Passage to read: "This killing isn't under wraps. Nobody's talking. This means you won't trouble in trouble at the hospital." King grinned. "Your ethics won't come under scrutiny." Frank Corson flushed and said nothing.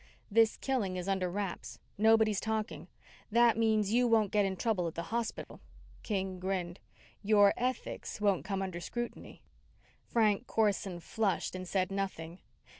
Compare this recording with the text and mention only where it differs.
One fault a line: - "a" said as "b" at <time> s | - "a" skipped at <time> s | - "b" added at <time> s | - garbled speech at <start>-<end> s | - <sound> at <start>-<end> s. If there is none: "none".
- "isn't" said as "is" at 1.0 s
- "This" said as "That" at 3.3 s
- "trouble" said as "get" at 4.3 s
- dropout at 5.4-5.5 s